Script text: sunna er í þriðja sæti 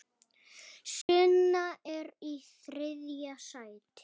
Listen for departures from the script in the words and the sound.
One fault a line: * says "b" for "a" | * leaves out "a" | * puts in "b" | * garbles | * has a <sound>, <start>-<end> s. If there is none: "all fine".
* has a dropout, 1.0-1.1 s